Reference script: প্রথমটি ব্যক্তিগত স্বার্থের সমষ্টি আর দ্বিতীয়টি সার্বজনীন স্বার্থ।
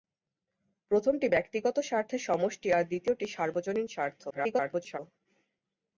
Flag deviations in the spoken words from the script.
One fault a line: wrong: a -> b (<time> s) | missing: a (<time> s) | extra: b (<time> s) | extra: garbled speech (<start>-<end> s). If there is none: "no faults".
extra: garbled speech (4.3-5.0 s)